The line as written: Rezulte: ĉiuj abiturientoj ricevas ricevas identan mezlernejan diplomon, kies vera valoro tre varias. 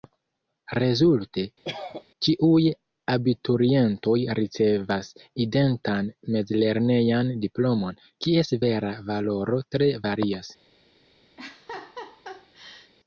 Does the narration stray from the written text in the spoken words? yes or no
yes